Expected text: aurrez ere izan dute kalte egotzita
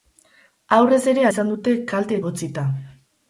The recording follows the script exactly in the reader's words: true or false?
true